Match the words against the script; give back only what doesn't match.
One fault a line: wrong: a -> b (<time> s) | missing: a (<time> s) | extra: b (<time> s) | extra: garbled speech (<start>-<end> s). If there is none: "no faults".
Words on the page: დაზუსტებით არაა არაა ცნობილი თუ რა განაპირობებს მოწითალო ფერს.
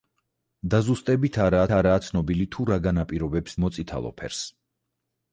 no faults